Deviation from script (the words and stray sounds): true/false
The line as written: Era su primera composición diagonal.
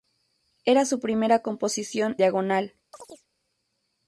true